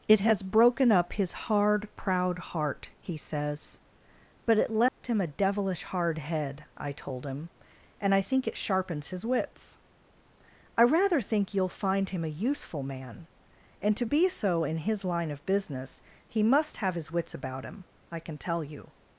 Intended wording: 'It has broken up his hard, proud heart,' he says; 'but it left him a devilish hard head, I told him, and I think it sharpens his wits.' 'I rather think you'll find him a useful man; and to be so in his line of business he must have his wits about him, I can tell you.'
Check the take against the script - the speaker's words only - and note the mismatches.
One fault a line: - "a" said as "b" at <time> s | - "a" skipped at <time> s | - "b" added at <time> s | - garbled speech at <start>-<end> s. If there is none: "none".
none